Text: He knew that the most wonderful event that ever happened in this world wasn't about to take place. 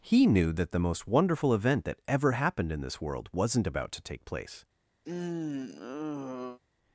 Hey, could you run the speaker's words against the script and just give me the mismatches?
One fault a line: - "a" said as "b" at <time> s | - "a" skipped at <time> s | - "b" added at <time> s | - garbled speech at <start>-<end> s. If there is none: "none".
none